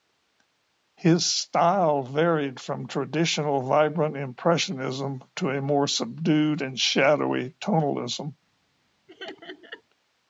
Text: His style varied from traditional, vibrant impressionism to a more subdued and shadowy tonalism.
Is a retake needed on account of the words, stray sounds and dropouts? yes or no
yes